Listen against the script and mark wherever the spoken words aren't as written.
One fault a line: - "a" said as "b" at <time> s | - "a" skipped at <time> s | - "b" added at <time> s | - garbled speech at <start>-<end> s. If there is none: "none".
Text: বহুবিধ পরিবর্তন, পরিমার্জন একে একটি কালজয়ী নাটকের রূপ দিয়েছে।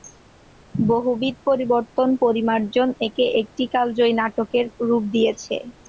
none